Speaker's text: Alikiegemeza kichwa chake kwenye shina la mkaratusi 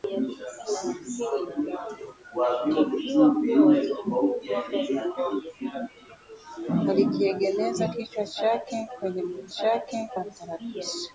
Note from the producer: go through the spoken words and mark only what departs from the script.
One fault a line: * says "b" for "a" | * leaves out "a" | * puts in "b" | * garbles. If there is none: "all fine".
* says "chake" for "shina"